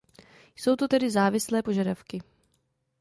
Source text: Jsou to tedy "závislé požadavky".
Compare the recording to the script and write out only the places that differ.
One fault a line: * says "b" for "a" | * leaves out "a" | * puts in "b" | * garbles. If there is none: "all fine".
all fine